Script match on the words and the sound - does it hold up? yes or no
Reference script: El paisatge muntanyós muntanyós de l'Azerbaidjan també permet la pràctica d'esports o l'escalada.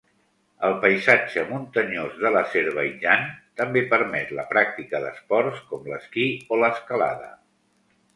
no